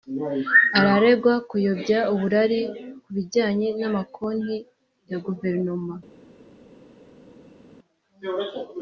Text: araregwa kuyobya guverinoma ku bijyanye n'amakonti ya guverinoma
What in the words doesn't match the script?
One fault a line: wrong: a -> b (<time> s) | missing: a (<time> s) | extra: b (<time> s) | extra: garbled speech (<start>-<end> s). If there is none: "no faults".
wrong: guverinoma -> uburari (2.1 s)